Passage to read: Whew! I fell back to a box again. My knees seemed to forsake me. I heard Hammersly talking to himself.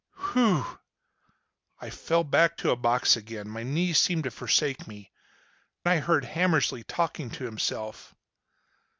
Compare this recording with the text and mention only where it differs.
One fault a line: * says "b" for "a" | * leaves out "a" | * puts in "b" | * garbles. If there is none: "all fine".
all fine